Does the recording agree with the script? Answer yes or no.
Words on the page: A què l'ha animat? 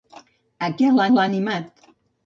no